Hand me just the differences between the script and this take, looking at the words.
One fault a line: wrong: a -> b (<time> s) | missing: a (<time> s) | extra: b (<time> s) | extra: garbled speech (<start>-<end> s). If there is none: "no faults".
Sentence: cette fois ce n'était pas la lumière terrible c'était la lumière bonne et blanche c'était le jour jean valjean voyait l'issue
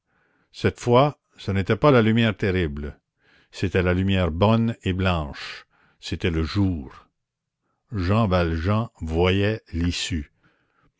no faults